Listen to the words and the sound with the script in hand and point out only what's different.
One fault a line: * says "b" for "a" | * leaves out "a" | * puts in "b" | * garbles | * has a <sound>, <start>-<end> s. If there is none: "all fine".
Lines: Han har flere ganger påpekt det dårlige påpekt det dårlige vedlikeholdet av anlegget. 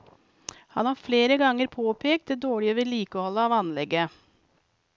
* leaves out "påpekt det dårlige"